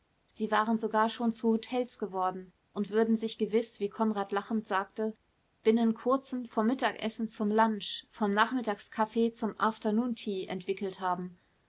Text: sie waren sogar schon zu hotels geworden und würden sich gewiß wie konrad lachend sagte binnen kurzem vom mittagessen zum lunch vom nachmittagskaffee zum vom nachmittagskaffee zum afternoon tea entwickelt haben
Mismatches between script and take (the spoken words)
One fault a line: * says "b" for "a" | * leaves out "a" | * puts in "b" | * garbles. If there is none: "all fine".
* leaves out "vom nachmittagskaffee zum"